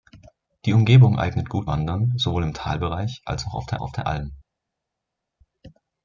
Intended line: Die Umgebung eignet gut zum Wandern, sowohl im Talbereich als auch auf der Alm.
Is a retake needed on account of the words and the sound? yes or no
yes